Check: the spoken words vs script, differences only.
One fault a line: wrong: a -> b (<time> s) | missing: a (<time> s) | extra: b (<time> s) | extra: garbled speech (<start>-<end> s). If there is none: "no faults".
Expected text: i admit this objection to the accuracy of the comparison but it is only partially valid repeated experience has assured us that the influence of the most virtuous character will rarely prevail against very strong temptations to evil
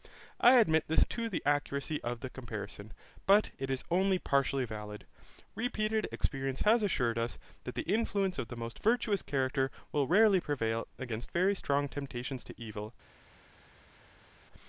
missing: objection (1.1 s)